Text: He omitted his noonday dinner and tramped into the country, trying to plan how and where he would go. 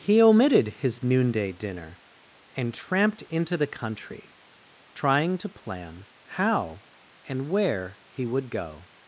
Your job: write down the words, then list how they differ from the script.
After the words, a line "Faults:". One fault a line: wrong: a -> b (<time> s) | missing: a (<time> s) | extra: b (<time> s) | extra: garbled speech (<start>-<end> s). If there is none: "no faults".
He omitted his noonday dinner and tramped into the country, trying to plan how and where he would go.
Faults:
no faults